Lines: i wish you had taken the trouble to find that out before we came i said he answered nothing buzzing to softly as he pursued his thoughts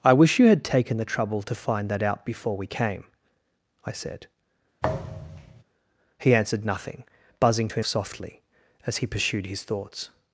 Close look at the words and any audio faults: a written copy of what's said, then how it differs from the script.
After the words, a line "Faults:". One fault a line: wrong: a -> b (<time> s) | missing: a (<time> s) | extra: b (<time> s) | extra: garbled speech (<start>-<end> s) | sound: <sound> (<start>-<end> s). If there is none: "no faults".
i wish you had taken the trouble to find that out before we came i said he answered nothing buzzing to softly as he pursued his thoughts
Faults:
sound: thud (4.8-5.6 s)